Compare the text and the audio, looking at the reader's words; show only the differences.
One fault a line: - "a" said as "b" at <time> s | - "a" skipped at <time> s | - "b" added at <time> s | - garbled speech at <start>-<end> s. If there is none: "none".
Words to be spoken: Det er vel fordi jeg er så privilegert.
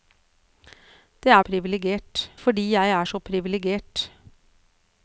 - "vel" said as "privilegert" at 1.4 s